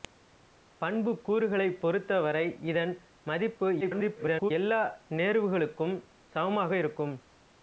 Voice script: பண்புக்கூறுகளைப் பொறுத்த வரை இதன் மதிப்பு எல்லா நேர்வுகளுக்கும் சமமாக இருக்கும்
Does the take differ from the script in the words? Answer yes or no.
yes